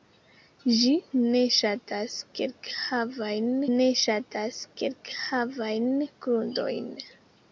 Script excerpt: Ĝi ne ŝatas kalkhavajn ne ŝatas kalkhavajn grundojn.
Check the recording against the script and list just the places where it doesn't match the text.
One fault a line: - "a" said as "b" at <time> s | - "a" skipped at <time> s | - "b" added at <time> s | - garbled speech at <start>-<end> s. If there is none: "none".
none